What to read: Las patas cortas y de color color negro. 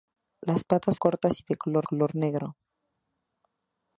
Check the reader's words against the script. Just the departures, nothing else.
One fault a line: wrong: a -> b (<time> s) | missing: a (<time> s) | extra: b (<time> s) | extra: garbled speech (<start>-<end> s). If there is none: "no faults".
no faults